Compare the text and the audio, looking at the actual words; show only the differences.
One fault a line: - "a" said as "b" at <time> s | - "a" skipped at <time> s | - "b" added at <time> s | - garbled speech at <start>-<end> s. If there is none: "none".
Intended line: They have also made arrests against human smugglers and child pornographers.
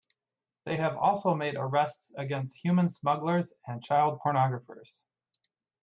none